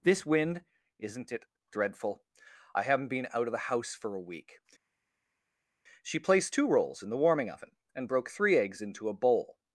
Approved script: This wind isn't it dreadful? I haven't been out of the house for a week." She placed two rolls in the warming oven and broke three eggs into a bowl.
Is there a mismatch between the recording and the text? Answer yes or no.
no